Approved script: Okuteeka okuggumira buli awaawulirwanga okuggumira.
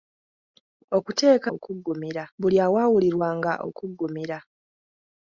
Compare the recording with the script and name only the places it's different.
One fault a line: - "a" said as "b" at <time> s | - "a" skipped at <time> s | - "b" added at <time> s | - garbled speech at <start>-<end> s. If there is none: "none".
none